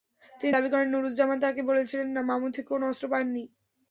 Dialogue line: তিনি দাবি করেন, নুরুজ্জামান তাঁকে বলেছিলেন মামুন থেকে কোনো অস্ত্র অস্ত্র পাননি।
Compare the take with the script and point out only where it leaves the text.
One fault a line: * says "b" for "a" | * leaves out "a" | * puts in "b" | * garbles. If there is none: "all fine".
* leaves out "অস্ত্র"